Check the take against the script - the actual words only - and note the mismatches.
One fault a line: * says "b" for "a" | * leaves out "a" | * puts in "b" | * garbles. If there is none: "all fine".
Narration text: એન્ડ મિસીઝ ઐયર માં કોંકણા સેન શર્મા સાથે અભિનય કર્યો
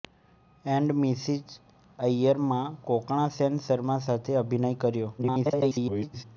* garbles